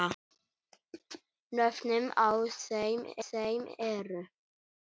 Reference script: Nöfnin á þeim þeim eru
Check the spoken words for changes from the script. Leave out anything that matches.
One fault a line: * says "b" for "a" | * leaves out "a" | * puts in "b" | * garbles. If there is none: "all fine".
all fine